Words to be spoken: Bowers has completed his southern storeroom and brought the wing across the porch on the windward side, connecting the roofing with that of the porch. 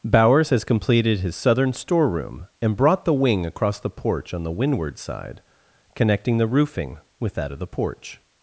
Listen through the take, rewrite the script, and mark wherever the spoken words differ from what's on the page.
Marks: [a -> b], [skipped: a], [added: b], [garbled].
Bowers has completed his southern storeroom and brought the wing across the porch on the windward side, connecting the roofing with that of the porch.